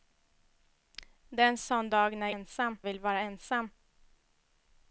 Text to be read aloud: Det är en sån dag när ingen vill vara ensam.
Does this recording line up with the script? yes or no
no